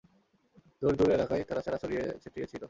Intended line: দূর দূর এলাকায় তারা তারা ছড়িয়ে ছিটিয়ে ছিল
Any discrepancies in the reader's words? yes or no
no